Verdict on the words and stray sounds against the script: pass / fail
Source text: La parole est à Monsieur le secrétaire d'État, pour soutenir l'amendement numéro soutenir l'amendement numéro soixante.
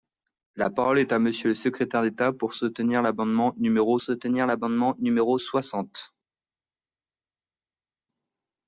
pass